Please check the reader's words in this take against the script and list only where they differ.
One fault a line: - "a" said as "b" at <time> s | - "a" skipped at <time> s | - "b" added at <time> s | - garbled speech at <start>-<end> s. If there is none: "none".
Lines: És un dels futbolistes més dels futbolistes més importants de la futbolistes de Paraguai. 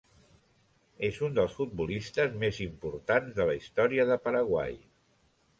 - "dels futbolistes més" skipped at 2.6 s
- "futbolistes" said as "història" at 3.6 s